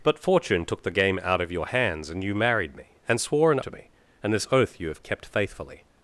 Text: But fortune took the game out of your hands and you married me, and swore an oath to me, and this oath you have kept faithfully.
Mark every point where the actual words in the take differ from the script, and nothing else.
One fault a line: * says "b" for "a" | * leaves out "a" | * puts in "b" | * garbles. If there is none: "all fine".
* leaves out "oath"